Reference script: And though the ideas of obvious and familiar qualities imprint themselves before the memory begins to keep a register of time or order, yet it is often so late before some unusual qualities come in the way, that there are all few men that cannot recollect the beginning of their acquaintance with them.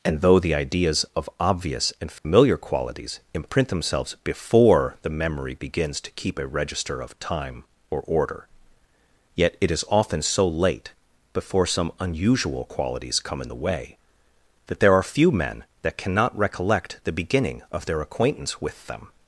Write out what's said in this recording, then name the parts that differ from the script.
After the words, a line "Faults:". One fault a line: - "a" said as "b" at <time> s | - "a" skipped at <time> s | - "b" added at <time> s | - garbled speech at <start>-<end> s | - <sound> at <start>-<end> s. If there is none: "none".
And though the ideas of obvious and familiar qualities imprint themselves before the memory begins to keep a register of time or order, yet it is often so late before some unusual qualities come in the way, that there are few men that cannot recollect the beginning of their acquaintance with them.
Faults:
- dropout at 2.2-2.2 s
- "all" skipped at 15.0 s